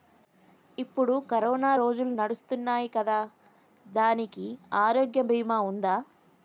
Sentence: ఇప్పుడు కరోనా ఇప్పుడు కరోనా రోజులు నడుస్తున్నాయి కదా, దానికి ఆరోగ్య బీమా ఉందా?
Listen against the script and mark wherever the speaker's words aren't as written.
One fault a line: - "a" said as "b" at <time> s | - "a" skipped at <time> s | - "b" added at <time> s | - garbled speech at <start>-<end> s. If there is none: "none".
- "ఇప్పుడు కరోనా" skipped at 1.8 s